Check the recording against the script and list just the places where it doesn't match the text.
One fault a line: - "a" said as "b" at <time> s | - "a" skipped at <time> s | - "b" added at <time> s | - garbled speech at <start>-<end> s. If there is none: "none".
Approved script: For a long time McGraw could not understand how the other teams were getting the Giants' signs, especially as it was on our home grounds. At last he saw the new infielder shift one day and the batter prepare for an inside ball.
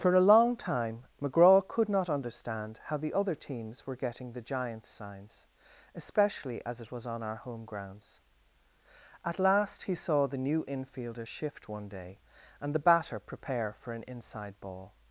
none